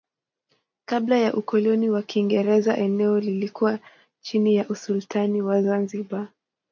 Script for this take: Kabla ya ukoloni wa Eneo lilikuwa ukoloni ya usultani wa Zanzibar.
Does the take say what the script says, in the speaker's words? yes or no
no